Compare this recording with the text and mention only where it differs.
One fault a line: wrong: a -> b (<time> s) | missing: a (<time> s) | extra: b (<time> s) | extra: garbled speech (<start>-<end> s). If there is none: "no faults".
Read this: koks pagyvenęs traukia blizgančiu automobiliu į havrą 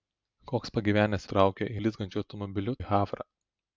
no faults